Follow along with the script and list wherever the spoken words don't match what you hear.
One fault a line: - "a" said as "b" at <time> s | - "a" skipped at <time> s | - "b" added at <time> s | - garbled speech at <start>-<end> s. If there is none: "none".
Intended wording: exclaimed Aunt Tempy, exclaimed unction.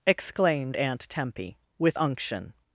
- "exclaimed" said as "with" at 1.8 s